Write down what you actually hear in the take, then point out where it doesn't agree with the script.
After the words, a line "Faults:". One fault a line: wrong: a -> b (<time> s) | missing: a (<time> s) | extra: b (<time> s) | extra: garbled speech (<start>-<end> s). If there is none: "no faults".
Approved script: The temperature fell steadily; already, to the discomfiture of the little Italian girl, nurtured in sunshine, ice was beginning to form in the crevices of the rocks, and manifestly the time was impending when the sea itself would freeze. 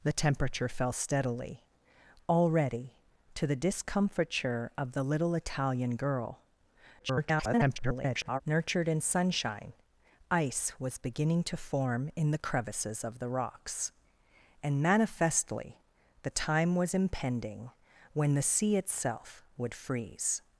The temperature fell steadily; already, to the discomfiture of the little Italian girl, [garbled] nurtured in sunshine, ice was beginning to form in the crevices of the rocks, and manifestly the time was impending when the sea itself would freeze.
Faults:
extra: garbled speech (7.0-8.4 s)